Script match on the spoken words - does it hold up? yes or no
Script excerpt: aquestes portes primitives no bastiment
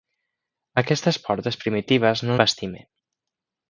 yes